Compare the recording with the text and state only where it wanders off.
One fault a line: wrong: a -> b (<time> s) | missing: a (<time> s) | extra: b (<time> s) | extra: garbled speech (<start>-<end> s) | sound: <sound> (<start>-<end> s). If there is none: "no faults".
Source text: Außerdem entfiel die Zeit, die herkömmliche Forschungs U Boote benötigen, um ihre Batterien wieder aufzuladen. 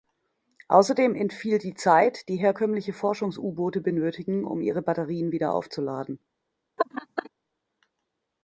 sound: laugh (6.8-7.3 s)